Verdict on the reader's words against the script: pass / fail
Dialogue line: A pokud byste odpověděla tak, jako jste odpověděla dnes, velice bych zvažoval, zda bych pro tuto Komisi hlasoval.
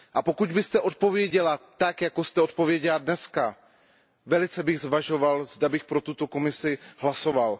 pass